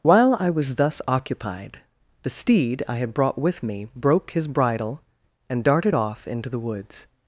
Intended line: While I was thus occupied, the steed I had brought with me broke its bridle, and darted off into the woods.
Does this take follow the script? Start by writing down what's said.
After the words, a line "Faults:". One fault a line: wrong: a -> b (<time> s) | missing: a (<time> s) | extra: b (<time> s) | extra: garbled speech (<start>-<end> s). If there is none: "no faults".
While I was thus occupied, the steed I had brought with me broke his bridle, and darted off into the woods.
Faults:
wrong: its -> his (4.3 s)